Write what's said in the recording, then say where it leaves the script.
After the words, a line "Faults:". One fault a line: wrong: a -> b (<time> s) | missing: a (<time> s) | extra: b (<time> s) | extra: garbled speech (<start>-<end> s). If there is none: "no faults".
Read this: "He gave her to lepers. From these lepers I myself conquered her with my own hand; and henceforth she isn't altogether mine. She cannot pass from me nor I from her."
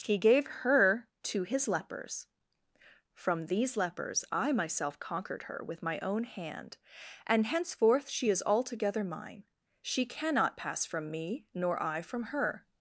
"He gave her to his lepers. From these lepers I myself conquered her with my own hand; and henceforth she is altogether mine. She cannot pass from me nor I from her."
Faults:
extra: his (1.4 s)
wrong: isn't -> is (8.3 s)